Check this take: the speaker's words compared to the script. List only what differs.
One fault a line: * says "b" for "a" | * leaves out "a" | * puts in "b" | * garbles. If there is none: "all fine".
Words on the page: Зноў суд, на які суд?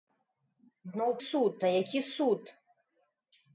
all fine